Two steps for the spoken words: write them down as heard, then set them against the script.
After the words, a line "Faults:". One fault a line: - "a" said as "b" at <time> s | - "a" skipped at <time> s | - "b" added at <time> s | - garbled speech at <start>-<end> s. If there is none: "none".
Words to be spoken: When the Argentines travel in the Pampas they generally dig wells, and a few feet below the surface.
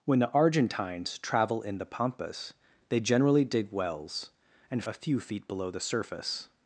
When the Argentines travel in the Pampas they generally dig wells, and a few feet below the surface.
Faults:
none